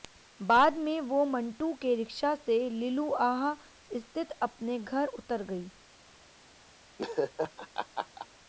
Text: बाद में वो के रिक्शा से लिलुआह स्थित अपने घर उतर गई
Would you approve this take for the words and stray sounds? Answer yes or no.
no